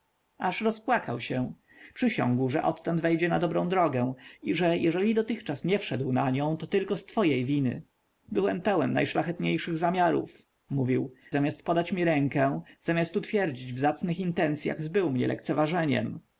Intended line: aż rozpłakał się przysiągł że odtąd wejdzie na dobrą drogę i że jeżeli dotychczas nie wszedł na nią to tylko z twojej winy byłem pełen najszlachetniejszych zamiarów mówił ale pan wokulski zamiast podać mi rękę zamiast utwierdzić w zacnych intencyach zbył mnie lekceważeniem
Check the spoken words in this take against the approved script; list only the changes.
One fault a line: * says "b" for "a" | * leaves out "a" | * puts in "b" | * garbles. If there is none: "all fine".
* leaves out "ale pan wokulski"